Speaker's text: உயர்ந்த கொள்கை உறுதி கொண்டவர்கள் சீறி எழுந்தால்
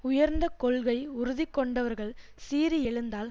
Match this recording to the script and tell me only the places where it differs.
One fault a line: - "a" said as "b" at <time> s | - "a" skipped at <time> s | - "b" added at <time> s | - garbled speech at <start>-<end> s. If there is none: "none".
none